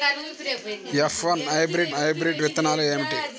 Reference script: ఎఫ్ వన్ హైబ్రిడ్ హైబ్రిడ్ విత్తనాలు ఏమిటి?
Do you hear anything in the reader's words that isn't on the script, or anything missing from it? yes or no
no